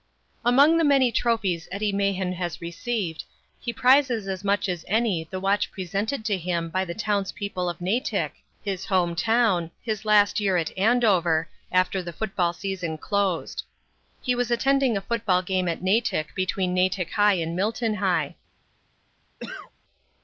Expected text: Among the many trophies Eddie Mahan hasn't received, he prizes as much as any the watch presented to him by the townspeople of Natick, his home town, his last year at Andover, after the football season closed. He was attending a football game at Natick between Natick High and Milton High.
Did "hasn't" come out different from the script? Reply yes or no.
yes